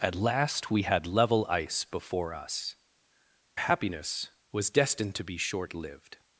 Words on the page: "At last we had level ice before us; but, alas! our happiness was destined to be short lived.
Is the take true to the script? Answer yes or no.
no